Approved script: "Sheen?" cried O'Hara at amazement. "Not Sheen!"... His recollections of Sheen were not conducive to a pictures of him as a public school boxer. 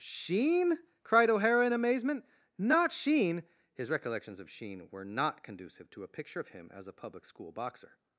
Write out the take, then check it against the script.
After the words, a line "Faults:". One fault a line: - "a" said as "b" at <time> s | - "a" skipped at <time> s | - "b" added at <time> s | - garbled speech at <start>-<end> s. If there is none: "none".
"Sheen?" cried O'Hara in amazement. "Not Sheen!"... His recollections of Sheen were not conducive to a picture of him as a public school boxer.
Faults:
- "at" said as "in" at 1.6 s
- "pictures" said as "picture" at 6.1 s